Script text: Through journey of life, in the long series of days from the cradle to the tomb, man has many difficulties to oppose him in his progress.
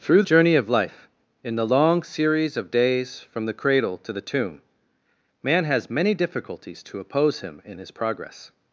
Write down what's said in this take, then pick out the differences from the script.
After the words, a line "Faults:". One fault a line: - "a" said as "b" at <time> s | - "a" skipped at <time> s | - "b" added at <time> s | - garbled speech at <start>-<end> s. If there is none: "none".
Through journey of life, in the long series of days from the cradle to the tomb, man has many difficulties to oppose him in his progress.
Faults:
none